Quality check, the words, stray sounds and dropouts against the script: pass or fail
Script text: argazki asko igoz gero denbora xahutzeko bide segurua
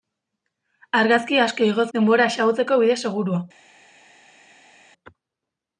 fail